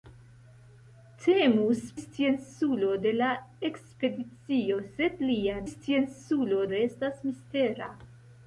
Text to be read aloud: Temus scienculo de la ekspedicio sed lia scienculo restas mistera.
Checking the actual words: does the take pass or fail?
pass